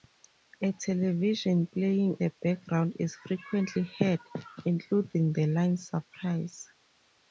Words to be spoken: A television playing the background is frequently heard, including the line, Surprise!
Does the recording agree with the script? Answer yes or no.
yes